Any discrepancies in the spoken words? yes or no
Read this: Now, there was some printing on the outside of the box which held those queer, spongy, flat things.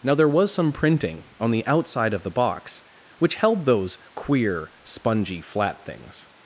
no